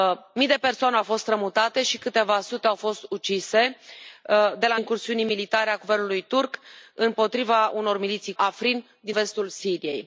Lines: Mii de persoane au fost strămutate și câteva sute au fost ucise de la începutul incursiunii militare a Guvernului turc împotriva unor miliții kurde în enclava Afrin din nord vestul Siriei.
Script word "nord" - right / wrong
wrong